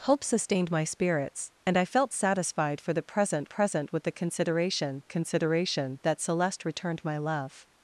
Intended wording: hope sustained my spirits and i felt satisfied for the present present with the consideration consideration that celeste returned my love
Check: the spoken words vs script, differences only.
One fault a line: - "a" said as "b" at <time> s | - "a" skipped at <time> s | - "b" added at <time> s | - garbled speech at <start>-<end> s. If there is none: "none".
none